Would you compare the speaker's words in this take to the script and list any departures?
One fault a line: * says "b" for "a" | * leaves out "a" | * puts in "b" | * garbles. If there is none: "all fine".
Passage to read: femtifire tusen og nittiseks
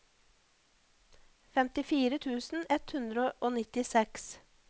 * puts in "ett hundre"